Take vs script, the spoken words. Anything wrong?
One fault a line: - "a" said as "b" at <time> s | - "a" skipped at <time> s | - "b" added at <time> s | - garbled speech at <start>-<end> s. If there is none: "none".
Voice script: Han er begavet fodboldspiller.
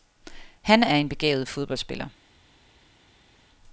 - "en" added at 0.9 s